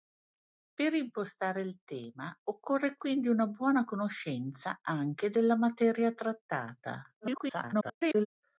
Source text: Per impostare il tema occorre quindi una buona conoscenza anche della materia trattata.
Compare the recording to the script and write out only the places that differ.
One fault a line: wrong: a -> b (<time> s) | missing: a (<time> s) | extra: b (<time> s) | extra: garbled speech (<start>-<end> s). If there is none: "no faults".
extra: garbled speech (7.2-8.3 s)